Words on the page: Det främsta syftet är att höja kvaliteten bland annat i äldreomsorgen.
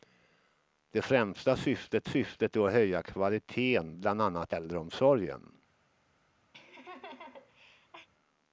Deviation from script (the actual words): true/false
true